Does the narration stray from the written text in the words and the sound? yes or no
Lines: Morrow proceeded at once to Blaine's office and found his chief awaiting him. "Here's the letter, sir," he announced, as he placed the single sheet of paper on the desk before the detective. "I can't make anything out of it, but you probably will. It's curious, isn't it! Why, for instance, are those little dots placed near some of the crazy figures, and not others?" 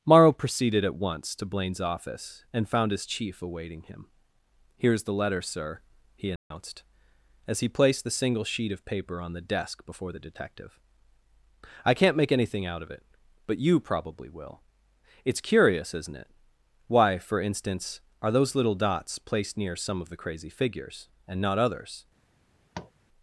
yes